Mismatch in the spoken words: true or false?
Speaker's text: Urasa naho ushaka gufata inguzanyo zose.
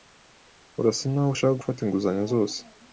false